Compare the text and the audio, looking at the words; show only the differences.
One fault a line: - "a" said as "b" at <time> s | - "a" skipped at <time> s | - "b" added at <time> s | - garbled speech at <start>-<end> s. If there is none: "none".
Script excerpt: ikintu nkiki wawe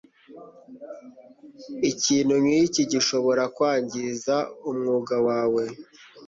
- "gishobora kwangiza umwuga" added at 2.9 s